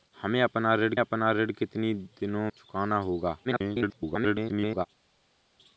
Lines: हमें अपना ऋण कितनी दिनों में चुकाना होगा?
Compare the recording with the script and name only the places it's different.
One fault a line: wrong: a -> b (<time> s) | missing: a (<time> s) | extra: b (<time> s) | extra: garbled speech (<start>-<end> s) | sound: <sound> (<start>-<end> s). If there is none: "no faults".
extra: अपना ऋण (1.0 s)
missing: में (2.5 s)
extra: garbled speech (3.4-4.9 s)